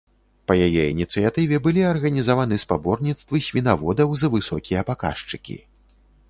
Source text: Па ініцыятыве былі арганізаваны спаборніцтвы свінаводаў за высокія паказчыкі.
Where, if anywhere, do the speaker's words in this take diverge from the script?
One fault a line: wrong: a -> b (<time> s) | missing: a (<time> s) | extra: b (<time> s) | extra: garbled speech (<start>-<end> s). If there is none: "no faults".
extra: яе (0.7 s)